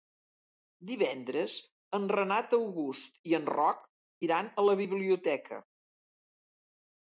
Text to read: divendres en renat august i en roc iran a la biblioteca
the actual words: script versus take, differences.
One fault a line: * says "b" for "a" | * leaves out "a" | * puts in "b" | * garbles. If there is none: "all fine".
all fine